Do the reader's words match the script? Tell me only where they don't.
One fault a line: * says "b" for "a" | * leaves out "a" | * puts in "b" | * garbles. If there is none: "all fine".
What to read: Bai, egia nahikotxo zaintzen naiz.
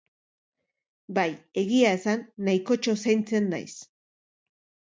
* puts in "esan"